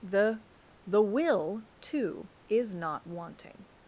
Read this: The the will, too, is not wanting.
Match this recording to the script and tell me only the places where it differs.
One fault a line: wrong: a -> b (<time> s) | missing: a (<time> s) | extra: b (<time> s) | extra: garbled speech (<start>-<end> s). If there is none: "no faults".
no faults